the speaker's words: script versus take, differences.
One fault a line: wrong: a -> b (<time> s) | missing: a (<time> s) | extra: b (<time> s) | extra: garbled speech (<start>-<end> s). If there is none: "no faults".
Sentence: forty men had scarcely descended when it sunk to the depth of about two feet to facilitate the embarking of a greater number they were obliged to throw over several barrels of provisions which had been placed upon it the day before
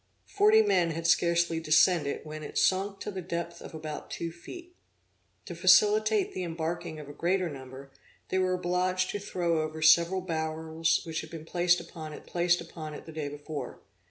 missing: of provisions (11.0 s)
extra: placed upon it (12.2 s)